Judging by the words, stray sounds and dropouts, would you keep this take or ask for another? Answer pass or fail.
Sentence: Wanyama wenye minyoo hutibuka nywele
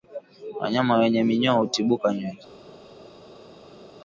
pass